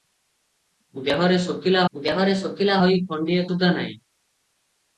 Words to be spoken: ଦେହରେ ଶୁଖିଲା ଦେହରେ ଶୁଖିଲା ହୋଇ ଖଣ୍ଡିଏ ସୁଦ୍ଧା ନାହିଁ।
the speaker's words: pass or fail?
pass